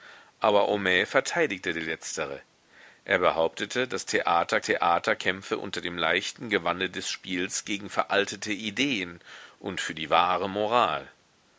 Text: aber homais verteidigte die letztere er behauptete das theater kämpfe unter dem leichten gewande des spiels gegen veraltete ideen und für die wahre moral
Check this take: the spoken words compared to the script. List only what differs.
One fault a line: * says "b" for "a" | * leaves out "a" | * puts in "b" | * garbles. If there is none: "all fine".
* puts in "theater"